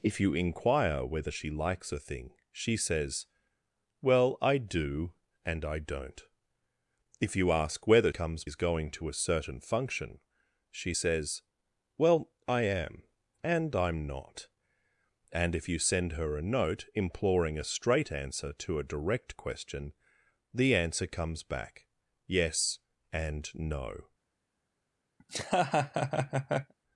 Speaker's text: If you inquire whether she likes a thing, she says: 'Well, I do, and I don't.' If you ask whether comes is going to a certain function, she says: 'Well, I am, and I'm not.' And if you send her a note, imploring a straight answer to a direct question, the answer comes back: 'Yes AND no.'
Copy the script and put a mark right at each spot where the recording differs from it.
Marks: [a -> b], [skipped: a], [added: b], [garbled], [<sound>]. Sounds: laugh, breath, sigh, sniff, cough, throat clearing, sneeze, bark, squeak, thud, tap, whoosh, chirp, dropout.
If you inquire whether she likes a thing, she says: 'Well, I do, and I don't.' If you ask whether comes is going to a certain function, she says: 'Well, I am, and I'm not.' And if you send her a note, imploring a straight answer to a direct question, the answer comes back: 'Yes AND no.' [laugh]